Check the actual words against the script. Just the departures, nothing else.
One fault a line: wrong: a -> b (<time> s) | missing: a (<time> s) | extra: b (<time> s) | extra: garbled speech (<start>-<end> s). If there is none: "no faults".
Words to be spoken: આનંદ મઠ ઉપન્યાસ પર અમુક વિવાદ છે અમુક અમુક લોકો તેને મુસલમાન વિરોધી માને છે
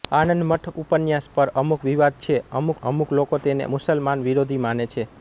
no faults